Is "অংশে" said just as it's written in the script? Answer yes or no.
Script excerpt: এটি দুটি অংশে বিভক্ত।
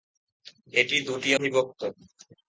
no